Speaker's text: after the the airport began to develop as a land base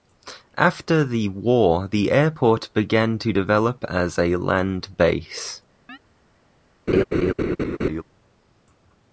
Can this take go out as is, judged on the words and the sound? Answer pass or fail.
fail